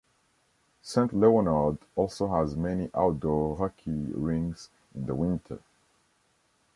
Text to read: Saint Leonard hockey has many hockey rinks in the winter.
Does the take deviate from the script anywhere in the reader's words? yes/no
yes